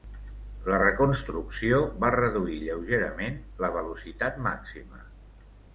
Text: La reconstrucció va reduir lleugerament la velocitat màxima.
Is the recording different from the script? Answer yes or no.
no